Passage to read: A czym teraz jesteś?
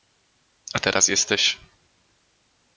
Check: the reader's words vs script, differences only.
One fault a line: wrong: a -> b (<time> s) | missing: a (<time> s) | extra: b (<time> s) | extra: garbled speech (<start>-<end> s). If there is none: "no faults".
missing: czym (0.8 s)